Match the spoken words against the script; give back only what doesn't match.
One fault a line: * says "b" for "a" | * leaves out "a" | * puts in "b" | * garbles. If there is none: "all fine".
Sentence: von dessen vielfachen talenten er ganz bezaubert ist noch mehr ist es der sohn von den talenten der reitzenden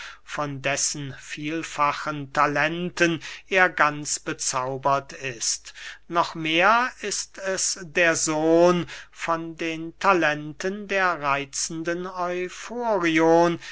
all fine